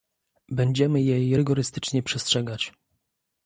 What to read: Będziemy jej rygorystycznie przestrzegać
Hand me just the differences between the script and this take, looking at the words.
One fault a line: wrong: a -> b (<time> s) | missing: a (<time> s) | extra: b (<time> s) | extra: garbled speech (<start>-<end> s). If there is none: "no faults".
no faults